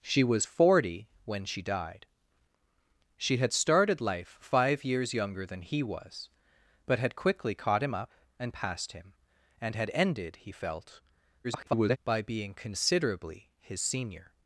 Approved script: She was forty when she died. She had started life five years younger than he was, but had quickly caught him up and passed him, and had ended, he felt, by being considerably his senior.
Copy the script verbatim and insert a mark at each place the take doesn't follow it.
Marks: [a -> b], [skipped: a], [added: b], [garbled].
She was forty when she died. She had started life five years younger than he was, but had quickly caught him up and passed him, and had ended, he felt, [garbled] by being considerably his senior.